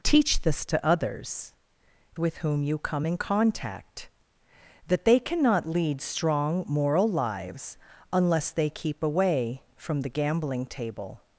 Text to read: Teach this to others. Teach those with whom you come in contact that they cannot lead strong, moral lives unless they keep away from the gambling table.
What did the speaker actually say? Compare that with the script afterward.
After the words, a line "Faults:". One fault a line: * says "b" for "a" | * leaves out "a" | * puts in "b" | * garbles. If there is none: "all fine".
Teach this to others. With whom you come in contact that they cannot lead strong, moral lives unless they keep away from the gambling table.
Faults:
* leaves out "Teach those"